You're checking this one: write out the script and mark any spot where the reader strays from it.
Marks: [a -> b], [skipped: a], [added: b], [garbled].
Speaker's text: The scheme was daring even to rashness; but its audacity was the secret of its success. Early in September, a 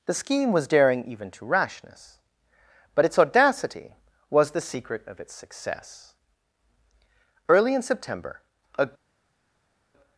The scheme was daring even to rashness; but its audacity was the secret of its success. Early in September, a